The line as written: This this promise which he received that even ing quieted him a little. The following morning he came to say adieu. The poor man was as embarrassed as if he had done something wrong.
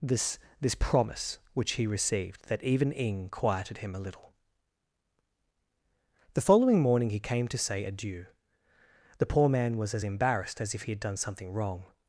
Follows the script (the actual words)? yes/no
yes